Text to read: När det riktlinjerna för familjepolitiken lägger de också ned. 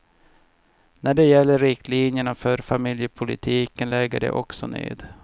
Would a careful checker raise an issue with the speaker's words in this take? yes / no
yes